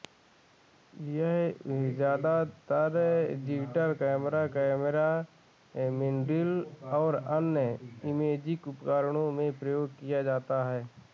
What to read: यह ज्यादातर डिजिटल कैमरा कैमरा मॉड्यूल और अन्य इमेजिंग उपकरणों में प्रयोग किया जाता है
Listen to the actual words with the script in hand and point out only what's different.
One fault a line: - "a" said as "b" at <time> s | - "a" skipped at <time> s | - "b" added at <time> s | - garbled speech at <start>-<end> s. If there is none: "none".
none